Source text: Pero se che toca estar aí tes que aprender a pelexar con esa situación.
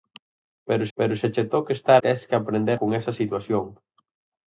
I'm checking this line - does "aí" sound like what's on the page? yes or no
no